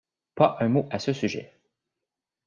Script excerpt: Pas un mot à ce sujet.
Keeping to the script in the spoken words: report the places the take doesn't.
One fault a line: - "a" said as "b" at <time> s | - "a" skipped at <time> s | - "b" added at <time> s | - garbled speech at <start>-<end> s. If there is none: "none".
none